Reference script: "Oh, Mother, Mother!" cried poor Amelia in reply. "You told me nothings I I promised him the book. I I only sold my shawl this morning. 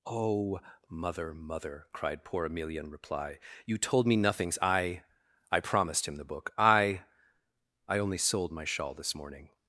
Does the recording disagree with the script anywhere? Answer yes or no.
no